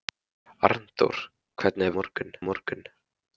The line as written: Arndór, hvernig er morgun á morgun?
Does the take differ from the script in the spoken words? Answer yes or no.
no